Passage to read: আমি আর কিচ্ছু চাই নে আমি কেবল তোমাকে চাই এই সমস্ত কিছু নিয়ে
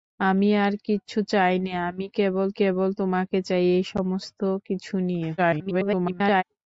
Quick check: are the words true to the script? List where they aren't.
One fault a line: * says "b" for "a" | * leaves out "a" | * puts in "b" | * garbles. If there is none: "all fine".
* puts in "কেবল"
* garbles